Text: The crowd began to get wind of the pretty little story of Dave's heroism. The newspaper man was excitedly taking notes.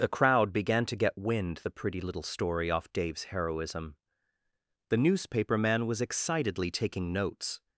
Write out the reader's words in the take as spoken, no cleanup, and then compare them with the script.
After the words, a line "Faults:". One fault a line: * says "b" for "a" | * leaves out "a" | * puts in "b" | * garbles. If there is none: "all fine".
The crowd began to get wind the pretty little story off Dave's heroism. The newspaper man was excitedly taking notes.
Faults:
* leaves out "of"
* says "off" for "of"